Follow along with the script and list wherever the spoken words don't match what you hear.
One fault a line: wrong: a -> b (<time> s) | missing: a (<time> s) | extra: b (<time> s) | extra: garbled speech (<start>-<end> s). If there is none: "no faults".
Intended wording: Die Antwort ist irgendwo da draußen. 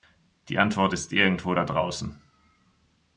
no faults